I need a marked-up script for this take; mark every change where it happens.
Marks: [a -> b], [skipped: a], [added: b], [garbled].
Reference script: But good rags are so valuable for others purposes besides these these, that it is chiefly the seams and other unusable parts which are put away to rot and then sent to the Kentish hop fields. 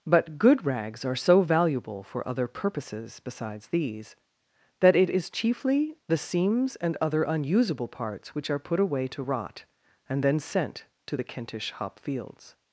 But good rags are so valuable for [others -> other] purposes besides these [skipped: these,] that it is chiefly the seams and other unusable parts which are put away to rot and then sent to the Kentish hop fields.